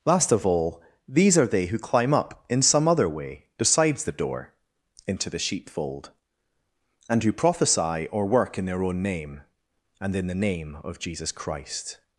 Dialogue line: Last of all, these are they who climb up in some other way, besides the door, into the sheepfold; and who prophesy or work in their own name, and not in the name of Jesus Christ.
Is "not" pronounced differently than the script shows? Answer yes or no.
yes